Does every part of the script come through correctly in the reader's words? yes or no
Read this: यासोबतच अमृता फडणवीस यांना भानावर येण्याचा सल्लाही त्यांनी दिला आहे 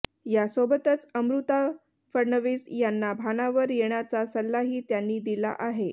yes